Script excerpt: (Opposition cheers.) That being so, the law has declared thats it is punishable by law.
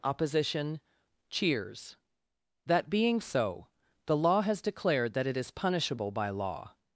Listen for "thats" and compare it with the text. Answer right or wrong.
wrong